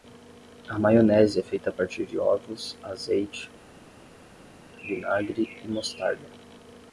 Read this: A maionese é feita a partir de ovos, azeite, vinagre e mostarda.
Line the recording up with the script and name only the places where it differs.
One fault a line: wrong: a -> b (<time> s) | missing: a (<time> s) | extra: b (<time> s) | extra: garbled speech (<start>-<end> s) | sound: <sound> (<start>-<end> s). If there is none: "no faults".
no faults